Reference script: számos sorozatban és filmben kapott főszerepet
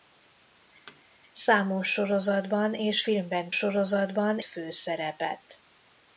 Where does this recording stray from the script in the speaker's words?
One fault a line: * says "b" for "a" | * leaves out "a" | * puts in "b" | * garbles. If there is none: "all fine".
* says "sorozatban" for "kapott"